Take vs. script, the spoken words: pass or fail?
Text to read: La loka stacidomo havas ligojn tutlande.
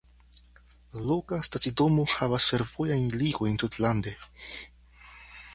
fail